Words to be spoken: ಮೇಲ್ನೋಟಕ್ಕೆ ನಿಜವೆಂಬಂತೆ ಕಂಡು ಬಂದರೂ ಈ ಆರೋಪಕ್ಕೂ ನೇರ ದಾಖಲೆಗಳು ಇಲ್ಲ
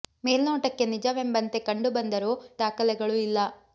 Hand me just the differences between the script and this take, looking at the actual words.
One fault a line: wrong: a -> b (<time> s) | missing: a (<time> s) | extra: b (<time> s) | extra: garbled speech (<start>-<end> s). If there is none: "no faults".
missing: ಈ ಆರೋಪಕ್ಕೂ ನೇರ (2.3 s)